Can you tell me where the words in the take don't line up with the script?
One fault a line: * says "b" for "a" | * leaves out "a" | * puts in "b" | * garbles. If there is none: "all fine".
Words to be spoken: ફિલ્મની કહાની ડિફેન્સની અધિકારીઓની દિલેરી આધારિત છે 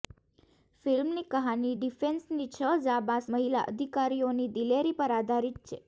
* puts in "છ જાંબાઝ મહિલા"
* puts in "પર"